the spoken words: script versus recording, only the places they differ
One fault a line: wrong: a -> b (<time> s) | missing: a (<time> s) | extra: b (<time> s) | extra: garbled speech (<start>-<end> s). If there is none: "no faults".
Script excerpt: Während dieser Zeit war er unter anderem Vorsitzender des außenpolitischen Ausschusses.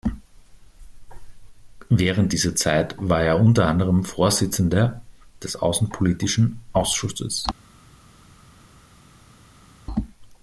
no faults